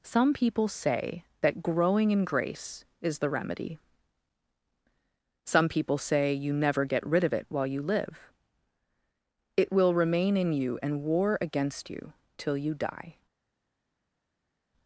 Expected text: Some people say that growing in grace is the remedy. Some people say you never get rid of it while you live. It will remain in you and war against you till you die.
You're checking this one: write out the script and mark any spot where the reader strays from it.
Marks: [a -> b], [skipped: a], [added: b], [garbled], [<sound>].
Some people say that growing in grace is the remedy. Some people say you never get rid of it while you live. It will remain in you and war against you till you die.